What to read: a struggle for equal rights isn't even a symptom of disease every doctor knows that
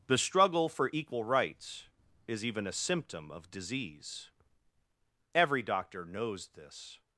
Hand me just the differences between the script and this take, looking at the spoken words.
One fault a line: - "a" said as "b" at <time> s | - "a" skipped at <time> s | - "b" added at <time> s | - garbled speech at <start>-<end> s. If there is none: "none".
- "a" said as "the" at 0.1 s
- "isn't" said as "is" at 2.3 s
- "that" said as "this" at 6.5 s